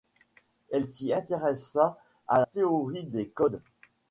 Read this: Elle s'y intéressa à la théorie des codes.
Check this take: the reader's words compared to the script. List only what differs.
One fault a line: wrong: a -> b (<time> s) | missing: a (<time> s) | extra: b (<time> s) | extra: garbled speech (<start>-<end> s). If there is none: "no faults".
missing: la (2.4 s)